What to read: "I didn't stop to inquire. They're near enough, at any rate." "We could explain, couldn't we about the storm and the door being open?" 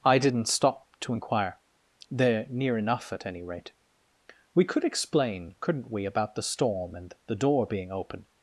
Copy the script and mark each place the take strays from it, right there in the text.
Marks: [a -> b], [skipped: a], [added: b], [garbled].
"I didn't stop to inquire. They're near enough, at any rate." "We could explain, couldn't we about the storm and the door being open?"